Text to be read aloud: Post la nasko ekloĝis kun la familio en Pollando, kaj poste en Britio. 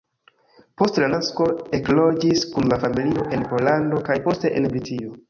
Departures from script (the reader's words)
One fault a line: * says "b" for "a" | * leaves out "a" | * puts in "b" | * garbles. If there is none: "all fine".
all fine